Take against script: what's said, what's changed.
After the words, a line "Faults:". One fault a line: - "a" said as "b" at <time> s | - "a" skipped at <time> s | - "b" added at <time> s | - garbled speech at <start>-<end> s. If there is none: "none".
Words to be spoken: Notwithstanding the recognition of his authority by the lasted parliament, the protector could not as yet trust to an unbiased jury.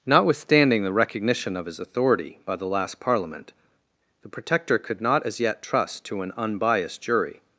Notwithstanding the recognition of his authority by the last parliament, the protector could not as yet trust to an unbiased jury.
Faults:
- "lasted" said as "last" at 2.6 s